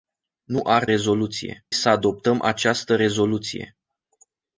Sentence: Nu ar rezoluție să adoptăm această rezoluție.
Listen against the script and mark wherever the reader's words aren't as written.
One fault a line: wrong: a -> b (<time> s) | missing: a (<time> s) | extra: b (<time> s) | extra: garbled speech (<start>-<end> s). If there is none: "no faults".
no faults